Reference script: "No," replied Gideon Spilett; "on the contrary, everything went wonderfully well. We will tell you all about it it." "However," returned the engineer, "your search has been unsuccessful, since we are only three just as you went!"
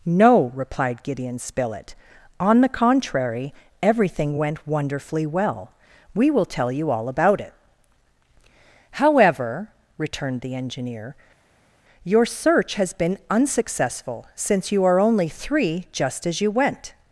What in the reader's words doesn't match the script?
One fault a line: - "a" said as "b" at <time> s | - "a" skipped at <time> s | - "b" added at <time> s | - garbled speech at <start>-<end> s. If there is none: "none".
- "it" skipped at 7.5 s
- "we" said as "you" at 14.7 s